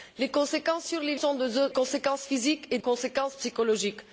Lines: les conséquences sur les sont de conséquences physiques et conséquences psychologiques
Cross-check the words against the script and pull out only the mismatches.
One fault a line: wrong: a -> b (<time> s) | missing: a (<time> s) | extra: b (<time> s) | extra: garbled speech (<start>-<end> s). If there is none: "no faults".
no faults